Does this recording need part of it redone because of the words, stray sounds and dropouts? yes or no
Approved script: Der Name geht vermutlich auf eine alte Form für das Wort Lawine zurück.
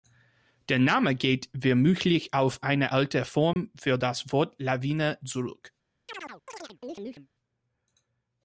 yes